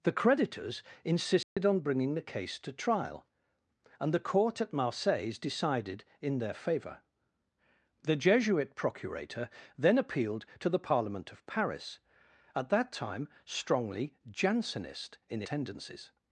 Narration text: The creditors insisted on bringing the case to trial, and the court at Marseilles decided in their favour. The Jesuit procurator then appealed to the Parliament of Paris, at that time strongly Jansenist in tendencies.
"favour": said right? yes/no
yes